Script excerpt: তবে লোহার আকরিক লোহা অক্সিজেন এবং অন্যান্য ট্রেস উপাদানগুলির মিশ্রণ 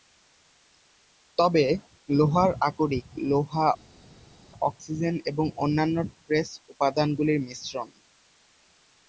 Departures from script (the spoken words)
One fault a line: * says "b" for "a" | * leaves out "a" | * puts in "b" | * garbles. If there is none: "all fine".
all fine